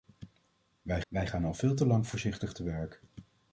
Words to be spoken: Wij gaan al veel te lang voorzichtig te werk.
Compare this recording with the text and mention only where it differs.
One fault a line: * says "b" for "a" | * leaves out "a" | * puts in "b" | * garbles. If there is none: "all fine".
* puts in "wij"